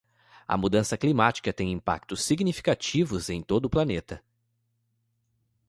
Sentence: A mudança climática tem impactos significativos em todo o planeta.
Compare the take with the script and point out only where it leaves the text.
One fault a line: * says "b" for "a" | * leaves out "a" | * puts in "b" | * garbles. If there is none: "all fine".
all fine